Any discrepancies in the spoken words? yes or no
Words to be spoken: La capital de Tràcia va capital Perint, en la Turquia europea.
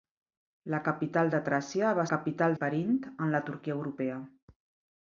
no